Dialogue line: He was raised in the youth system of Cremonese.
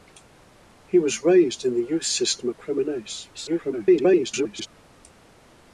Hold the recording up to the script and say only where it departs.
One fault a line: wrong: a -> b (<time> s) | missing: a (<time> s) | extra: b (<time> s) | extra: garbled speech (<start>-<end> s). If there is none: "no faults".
extra: garbled speech (3.3-4.7 s)